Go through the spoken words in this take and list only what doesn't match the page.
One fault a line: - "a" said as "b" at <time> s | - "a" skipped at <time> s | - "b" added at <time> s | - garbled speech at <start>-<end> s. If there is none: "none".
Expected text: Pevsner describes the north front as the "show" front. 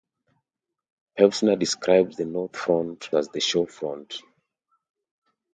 none